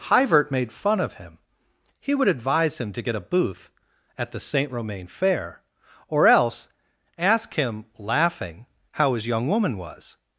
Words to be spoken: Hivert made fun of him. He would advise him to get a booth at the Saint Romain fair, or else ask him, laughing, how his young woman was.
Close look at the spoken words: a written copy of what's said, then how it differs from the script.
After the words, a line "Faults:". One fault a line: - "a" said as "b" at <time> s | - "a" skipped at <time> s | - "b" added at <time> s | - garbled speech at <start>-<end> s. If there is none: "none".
Hivert made fun of him. He would advise him to get a booth at the Saint Romain fair, or else ask him, laughing, how his young woman was.
Faults:
none